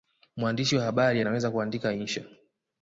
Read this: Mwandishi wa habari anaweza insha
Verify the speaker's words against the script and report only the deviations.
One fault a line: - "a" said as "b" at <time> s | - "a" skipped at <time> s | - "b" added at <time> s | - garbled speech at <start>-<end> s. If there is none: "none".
- "kuandika" added at 1.5 s